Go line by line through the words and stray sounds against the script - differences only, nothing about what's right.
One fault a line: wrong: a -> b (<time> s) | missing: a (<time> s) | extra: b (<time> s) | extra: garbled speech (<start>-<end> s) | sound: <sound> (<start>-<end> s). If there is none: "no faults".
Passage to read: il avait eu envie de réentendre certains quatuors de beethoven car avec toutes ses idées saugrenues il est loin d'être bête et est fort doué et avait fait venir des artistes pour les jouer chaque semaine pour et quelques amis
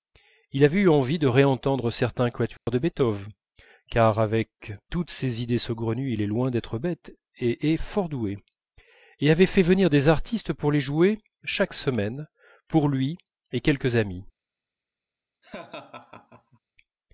sound: dropout (2.6-2.7 s)
extra: lui (12.9 s)
sound: laugh (15.4-16.6 s)